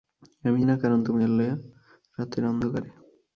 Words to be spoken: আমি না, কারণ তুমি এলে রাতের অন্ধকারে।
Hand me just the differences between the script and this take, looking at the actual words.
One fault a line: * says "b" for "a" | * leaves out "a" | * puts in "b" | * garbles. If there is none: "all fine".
all fine